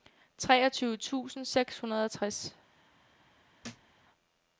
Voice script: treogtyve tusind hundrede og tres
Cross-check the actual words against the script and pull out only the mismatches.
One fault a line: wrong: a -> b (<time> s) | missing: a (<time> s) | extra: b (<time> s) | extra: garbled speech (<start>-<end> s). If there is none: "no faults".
extra: seks (1.4 s)